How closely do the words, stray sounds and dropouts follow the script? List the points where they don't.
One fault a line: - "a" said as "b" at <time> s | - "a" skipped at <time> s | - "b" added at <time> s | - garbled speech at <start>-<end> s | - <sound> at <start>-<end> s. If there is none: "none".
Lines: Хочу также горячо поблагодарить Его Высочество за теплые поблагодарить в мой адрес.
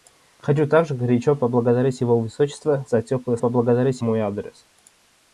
none